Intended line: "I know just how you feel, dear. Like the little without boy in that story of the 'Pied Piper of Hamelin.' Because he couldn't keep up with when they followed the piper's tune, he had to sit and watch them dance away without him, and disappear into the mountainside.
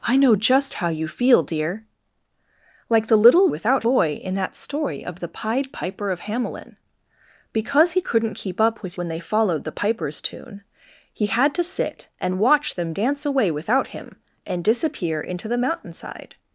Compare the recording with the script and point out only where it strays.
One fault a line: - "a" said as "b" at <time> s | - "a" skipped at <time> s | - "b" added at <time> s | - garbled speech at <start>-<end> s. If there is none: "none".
none